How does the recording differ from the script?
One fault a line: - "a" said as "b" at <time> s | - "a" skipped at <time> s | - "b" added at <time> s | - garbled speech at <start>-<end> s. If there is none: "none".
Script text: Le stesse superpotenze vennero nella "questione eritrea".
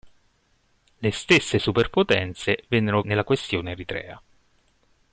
none